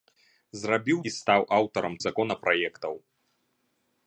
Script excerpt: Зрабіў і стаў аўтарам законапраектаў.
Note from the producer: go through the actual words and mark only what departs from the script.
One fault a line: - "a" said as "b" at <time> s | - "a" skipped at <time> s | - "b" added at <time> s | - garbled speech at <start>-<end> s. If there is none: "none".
none